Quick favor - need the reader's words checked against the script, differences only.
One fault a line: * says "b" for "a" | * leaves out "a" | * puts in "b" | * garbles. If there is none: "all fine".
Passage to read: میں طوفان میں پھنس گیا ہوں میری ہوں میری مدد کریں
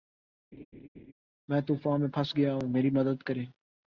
* leaves out "ہوں میری"